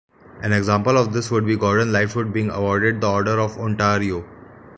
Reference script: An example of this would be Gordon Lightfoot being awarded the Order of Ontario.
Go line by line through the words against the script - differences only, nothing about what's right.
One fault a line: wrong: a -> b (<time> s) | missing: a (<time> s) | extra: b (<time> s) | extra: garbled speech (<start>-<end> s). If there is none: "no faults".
no faults